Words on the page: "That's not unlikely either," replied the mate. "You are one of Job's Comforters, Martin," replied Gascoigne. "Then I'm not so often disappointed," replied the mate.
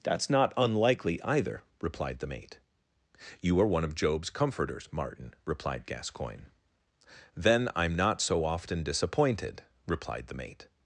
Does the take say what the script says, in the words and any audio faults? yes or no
yes